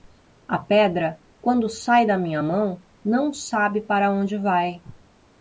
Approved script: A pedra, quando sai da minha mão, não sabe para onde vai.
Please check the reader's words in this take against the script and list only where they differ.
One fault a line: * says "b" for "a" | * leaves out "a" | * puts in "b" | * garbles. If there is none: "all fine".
all fine